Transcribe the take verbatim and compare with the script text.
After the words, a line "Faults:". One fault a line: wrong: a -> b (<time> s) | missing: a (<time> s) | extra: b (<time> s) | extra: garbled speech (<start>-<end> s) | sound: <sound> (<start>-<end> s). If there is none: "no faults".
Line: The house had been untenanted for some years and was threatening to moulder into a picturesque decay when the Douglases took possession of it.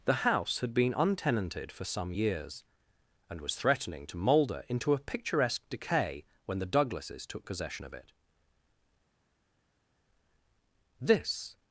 The house had been untenanted for some years and was threatening to moulder into a picturesque decay when the Douglases took possession of it. This
Faults:
extra: This (11.0 s)